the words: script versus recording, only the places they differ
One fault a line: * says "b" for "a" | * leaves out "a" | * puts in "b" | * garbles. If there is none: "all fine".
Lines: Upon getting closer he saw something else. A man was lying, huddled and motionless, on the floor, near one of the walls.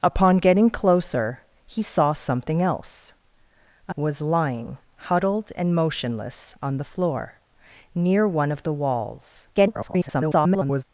* leaves out "man"
* garbles